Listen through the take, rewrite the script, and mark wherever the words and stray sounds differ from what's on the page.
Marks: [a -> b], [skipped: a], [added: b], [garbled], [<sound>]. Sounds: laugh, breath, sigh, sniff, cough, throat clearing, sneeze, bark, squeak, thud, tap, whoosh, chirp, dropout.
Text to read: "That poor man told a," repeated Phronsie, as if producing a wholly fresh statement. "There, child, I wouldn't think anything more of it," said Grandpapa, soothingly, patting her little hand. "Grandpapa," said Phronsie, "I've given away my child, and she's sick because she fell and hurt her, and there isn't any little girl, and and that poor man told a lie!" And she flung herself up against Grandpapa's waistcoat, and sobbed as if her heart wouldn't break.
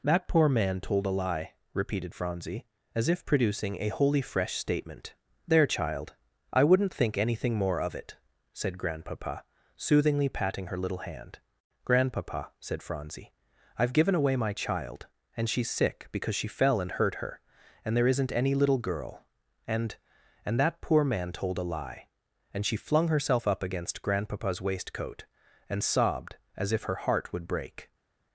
"That poor man told a," [added: lie] repeated Phronsie, as if producing a wholly fresh statement. "There, child, I wouldn't think anything more of it," said Grandpapa, soothingly, patting her little hand. "Grandpapa," said Phronsie, "I've given away my child, and she's sick because she fell and hurt her, and there isn't any little girl, and and that poor man told a lie!" And she flung herself up against Grandpapa's waistcoat, and sobbed as if her heart [wouldn't -> would] break.